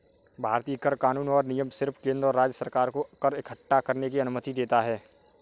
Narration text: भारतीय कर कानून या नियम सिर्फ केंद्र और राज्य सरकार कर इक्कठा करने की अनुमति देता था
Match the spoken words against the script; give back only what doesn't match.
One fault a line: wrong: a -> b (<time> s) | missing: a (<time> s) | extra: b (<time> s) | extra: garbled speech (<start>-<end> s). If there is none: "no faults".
wrong: या -> और (1.3 s)
extra: को (2.9 s)
wrong: था -> है (4.8 s)